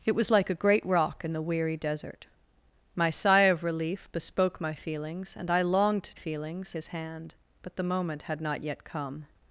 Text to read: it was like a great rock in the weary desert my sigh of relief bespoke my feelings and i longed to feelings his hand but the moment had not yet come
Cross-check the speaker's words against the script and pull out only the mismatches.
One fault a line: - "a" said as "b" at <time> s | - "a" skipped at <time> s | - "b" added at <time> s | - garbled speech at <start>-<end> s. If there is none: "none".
none